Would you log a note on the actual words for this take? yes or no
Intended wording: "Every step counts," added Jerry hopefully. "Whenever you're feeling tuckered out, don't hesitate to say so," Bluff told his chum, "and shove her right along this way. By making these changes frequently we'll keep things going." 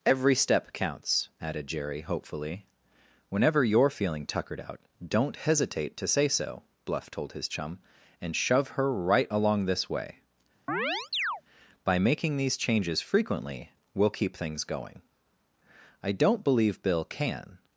yes